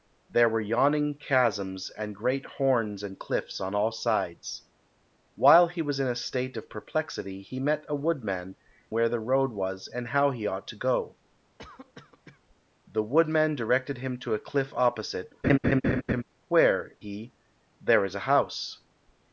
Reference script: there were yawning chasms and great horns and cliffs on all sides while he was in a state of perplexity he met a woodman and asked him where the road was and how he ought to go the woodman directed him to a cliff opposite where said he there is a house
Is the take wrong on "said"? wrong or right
wrong